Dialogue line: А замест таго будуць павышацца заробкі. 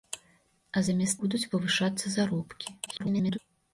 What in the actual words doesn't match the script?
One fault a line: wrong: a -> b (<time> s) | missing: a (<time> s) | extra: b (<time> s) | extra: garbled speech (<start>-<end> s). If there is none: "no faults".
missing: таго (1.2 s)
extra: garbled speech (2.9-3.4 s)